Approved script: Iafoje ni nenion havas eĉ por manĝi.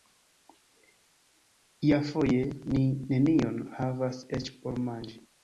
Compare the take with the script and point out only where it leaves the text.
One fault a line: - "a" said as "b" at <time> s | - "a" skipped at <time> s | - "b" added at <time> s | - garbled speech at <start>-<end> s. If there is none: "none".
none